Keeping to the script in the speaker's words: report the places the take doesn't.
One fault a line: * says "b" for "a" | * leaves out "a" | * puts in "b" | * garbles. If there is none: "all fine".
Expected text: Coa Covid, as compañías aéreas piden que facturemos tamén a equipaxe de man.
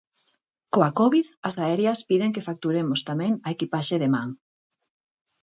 * leaves out "compañías"